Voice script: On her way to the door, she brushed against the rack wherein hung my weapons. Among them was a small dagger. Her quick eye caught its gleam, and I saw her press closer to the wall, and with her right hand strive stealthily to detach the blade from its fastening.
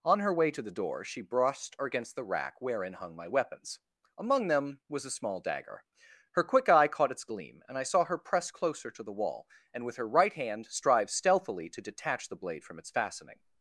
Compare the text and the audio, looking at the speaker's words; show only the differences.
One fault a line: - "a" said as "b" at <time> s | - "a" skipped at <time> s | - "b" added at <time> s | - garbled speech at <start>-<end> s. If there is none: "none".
none